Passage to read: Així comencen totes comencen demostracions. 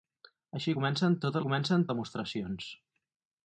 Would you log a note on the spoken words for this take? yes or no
no